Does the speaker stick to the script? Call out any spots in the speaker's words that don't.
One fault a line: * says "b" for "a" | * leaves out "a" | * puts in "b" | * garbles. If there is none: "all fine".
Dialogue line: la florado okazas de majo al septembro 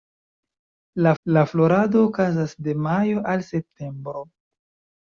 * puts in "la"